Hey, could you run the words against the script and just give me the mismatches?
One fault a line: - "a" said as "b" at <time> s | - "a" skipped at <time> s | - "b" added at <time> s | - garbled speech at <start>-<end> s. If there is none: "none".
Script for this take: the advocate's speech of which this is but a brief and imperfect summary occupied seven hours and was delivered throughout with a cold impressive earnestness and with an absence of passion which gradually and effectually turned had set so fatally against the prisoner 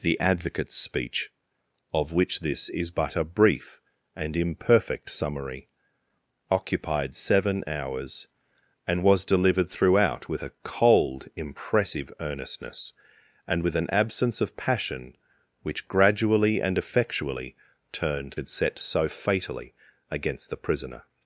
none